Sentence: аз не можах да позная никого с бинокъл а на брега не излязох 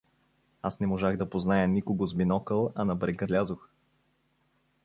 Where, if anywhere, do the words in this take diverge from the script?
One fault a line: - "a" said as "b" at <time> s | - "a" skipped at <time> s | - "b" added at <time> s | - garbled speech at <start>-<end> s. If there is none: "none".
- "не" skipped at 3.3 s